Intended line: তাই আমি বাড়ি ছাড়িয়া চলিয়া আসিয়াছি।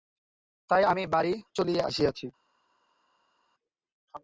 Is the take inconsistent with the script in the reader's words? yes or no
yes